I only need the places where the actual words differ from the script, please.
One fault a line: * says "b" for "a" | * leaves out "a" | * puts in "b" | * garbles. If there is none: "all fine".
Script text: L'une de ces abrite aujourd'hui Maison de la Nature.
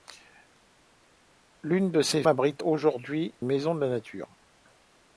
all fine